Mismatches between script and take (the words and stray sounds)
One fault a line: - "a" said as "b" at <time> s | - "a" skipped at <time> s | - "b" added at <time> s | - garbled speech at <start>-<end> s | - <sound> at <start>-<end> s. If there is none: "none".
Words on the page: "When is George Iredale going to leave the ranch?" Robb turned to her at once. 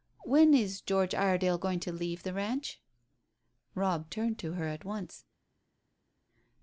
none